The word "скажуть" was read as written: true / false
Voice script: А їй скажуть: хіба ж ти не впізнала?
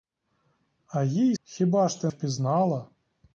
false